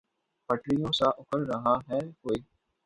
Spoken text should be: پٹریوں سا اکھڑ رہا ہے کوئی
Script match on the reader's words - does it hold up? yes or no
yes